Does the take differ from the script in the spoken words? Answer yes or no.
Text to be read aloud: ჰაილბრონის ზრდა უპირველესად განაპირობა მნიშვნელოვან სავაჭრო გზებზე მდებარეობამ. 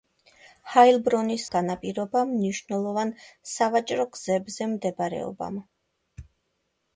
yes